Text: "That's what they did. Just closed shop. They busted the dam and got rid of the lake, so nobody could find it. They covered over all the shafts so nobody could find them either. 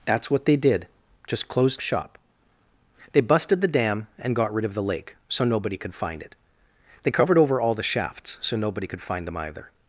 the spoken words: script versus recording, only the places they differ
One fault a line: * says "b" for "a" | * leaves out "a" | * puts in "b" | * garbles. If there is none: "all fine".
all fine